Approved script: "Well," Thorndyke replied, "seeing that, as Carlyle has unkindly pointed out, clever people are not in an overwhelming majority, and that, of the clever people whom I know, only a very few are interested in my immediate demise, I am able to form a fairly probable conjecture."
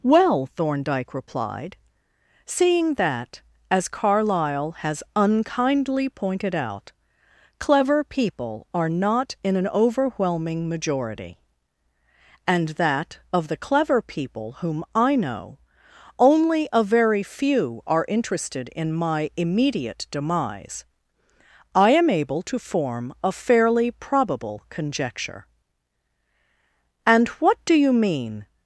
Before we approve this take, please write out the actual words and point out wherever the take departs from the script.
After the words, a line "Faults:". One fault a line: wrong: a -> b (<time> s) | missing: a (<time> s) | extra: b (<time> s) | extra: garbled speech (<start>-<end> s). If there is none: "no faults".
"Well," Thorndyke replied, "seeing that, as Carlyle has unkindly pointed out, clever people are not in an overwhelming majority, and that, of the clever people whom I know, only a very few are interested in my immediate demise, I am able to form a fairly probable conjecture." "And what do you mean
Faults:
extra: And what do you mean (27.1 s)